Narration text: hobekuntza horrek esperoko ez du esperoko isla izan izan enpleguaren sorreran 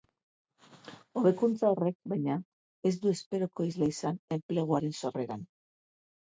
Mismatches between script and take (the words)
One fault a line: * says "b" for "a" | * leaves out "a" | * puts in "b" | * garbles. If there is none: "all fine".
* says "baina" for "esperoko"
* leaves out "izan"